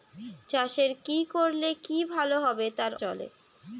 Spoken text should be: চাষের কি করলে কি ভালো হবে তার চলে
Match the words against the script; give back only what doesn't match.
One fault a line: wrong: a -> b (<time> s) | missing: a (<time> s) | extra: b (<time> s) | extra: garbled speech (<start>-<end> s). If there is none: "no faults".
no faults